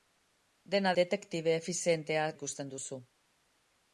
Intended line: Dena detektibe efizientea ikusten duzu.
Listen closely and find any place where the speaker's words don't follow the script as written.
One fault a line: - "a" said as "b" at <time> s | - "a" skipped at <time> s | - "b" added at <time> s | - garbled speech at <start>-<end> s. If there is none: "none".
none